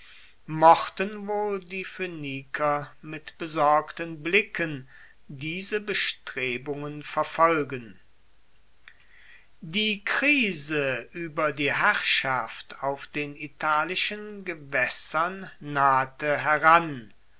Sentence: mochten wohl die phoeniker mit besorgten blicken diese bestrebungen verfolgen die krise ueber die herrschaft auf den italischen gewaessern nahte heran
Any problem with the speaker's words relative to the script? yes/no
no